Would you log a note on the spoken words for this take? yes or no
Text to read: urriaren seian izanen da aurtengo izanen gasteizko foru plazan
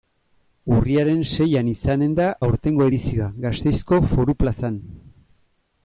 yes